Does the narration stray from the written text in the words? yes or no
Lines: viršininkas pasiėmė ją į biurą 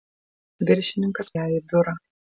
yes